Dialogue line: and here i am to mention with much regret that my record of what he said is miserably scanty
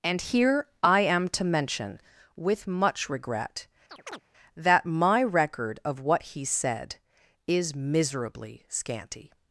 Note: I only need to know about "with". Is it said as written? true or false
true